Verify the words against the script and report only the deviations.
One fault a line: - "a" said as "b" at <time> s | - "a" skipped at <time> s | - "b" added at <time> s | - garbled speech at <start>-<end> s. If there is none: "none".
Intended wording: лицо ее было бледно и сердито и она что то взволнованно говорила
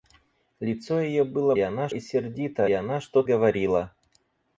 - "бледно" said as "она" at 1.6 s
- "и" skipped at 2.7 s
- "то взволнованно" skipped at 3.2 s